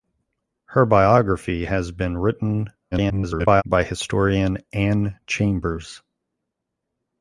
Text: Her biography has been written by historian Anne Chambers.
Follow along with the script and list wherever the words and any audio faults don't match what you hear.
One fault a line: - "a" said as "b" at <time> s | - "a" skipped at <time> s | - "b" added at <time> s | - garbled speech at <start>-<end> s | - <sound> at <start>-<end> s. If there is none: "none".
- garbled speech at 2.9-3.6 s